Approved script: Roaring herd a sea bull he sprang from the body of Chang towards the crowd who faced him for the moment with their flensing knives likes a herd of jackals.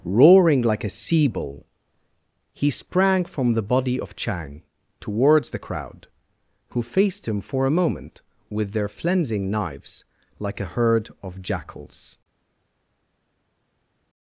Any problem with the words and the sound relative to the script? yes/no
yes